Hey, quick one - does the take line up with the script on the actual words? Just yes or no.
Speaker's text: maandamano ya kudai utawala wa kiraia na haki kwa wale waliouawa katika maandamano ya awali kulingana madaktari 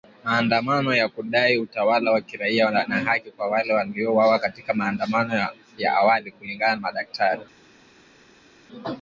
yes